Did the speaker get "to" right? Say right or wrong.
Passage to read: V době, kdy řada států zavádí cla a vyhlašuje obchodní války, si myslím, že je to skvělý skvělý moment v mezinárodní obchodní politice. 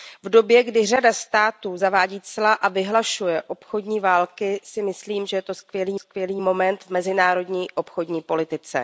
right